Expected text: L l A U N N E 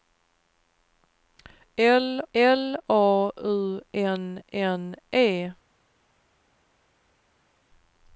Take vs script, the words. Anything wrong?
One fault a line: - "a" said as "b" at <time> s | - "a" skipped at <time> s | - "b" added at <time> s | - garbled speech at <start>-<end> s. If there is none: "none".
none